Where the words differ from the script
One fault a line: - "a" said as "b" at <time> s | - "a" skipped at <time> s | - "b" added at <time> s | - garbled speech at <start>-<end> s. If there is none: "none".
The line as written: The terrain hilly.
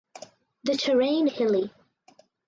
none